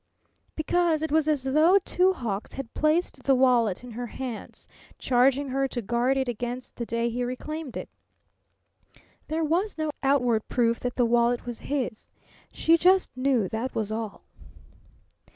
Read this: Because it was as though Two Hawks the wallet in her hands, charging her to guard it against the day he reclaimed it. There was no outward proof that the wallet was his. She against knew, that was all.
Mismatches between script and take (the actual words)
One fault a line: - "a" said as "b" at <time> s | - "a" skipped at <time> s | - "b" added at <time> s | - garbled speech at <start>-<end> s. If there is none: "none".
- "had placed" added at 2.5 s
- "against" said as "just" at 12.8 s